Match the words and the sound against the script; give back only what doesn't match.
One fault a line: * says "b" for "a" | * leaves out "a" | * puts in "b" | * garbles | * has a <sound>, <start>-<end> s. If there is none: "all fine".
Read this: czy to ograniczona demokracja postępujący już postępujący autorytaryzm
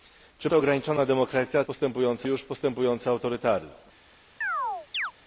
* has a chirp, 4.4-5.1 s